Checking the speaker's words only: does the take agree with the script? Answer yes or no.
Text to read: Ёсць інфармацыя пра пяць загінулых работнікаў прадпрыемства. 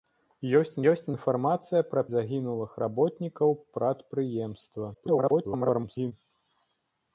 no